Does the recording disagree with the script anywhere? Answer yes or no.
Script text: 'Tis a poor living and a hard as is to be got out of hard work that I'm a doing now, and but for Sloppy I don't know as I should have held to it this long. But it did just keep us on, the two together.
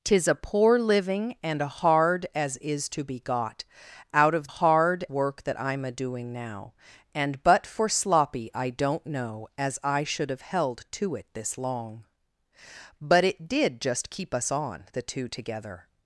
no